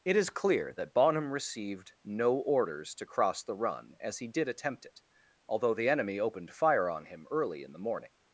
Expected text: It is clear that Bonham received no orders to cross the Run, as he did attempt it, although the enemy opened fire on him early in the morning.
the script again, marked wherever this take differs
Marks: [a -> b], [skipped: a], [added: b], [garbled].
It is clear that Bonham received no orders to cross the Run, as he did attempt it, although the enemy opened fire on him early in the morning.